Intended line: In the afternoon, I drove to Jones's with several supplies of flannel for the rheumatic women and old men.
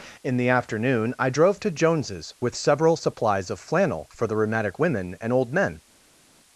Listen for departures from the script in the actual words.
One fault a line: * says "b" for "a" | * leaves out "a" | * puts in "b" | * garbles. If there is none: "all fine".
all fine